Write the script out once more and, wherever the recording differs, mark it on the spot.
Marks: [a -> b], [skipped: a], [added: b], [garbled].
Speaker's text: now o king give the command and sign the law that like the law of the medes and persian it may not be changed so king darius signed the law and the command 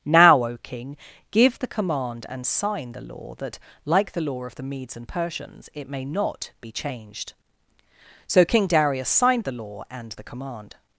now o king give the command and sign the law that like the law of the medes and [persian -> persians] it may not be changed so king darius signed the law and the command